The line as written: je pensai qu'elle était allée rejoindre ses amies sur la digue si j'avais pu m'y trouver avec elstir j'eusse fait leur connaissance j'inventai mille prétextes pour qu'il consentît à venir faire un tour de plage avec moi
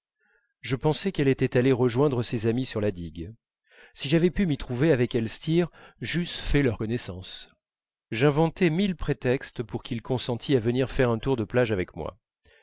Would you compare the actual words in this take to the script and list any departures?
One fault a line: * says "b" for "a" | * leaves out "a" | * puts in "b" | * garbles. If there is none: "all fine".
all fine